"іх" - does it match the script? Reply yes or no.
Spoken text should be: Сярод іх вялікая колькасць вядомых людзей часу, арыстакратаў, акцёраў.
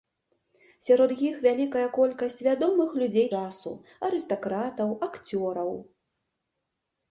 yes